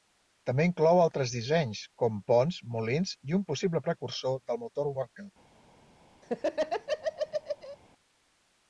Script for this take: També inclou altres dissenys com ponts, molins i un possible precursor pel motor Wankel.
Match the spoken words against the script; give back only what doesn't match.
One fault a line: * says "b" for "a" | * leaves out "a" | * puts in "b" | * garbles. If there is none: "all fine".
* says "del" for "pel"